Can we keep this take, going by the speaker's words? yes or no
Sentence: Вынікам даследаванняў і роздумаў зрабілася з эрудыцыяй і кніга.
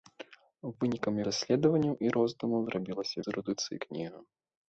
yes